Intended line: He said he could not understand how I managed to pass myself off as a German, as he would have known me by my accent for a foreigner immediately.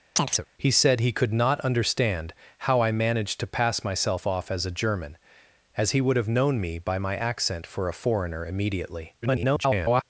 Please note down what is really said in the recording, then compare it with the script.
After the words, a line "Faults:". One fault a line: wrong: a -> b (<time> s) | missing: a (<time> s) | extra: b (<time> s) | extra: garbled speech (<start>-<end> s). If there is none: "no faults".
He said he could not understand how I managed to pass myself off as a German, as he would have known me by my accent for a foreigner immediately. [garbled]
Faults:
extra: garbled speech (9.2-10.0 s)